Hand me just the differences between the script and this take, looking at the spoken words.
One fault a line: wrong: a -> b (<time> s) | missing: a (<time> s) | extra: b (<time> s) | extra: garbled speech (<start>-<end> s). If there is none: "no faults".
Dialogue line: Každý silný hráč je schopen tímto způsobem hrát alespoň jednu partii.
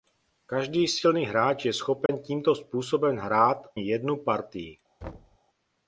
missing: alespoň (3.7 s)